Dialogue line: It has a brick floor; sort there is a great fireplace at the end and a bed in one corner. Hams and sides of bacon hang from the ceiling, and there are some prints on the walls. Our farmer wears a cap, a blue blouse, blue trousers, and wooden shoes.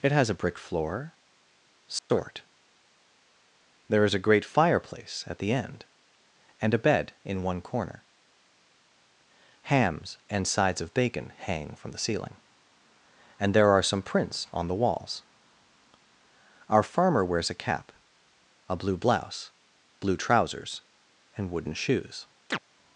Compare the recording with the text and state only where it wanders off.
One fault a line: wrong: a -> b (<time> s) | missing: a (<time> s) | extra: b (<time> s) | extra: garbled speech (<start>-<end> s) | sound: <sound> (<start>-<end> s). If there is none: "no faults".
sound: dropout (2.0-2.1 s)
sound: chirp (22.5-22.6 s)